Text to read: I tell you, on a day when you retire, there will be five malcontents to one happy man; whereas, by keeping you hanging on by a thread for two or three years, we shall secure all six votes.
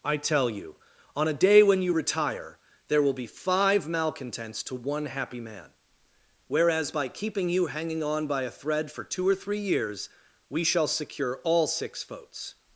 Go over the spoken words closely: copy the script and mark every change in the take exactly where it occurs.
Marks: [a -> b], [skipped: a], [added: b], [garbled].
I tell you, on a day when you retire, there will be five malcontents to one happy man; whereas, by keeping you hanging on by a thread for two or three years, we shall secure all six votes.